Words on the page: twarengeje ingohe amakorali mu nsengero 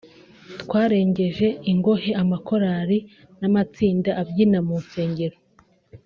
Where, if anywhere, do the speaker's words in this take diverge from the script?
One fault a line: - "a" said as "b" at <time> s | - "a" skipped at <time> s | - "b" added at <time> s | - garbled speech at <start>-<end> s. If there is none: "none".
- "n'amatsinda abyina" added at 3.4 s